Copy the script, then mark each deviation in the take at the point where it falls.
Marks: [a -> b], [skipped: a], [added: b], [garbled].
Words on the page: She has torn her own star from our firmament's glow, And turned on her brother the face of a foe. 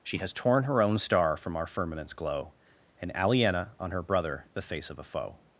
She has torn her own star from our firmament's glow, And [turned -> aliena] on her brother the face of a foe.